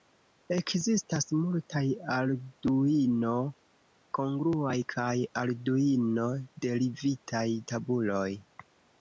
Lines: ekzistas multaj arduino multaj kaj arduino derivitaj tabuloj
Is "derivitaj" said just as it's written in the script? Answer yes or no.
yes